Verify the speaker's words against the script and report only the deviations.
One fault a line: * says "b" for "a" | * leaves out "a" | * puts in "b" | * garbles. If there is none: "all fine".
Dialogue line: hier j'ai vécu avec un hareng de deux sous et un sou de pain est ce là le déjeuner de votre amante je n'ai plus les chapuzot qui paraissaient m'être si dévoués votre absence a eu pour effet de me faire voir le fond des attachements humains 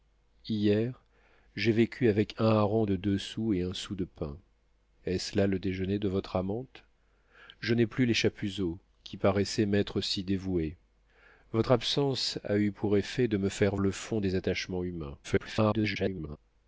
* leaves out "voir"
* garbles